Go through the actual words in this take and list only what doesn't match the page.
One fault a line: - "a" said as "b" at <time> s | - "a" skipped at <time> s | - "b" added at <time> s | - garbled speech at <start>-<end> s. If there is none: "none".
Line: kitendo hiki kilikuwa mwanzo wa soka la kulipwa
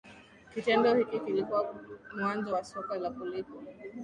none